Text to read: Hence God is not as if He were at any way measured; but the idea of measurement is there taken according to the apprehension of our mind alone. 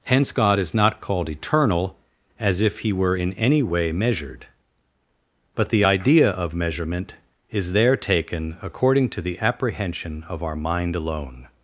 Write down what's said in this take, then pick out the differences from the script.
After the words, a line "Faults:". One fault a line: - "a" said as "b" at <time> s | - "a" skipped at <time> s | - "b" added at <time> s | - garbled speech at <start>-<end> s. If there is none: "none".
Hence God is not called eternal, as if He were in any way measured; but the idea of measurement is there taken according to the apprehension of our mind alone.
Faults:
- "called eternal" added at 1.0 s
- "at" said as "in" at 3.1 s